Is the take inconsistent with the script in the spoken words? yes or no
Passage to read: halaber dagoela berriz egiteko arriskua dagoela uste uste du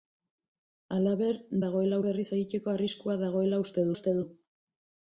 no